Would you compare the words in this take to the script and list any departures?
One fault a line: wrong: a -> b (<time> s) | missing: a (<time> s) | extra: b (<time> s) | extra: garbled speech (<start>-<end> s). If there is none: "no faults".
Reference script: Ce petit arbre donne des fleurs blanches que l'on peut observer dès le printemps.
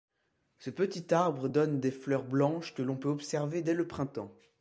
no faults